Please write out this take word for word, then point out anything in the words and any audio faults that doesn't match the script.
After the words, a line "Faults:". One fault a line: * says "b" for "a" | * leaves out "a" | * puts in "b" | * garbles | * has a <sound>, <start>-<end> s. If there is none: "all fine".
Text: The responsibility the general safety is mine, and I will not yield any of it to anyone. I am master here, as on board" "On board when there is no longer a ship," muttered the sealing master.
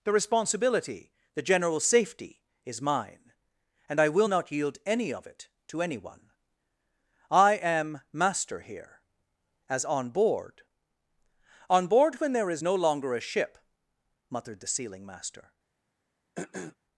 The responsibility the general safety is mine, and I will not yield any of it to anyone. I am master here, as on board" "On board when there is no longer a ship," muttered the sealing master.
Faults:
* has a throat clearing, 16.4-16.8 s